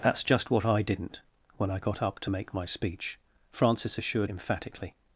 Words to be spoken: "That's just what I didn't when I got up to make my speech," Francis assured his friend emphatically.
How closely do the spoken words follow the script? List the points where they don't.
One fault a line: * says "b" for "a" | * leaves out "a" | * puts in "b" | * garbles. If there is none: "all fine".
* leaves out "his friend"